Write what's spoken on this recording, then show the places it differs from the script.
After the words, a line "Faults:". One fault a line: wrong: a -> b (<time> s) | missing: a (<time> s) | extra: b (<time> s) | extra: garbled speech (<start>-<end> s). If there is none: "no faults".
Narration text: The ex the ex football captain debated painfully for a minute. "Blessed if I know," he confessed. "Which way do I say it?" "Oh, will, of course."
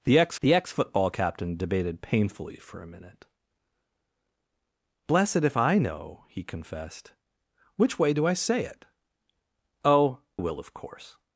The ex the ex football captain debated painfully for a minute. "Blessed if I know," he confessed. "Which way do I say it?" "Oh, will, of course."
Faults:
no faults